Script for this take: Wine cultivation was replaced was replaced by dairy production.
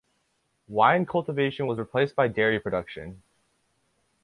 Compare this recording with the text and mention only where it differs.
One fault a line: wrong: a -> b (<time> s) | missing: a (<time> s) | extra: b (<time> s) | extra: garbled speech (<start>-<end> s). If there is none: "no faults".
missing: was replaced (2.1 s)